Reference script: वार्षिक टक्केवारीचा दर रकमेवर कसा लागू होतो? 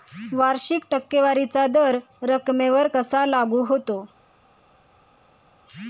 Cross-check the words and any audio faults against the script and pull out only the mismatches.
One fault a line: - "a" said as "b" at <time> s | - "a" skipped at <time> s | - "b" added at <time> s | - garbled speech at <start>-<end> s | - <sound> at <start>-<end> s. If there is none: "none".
none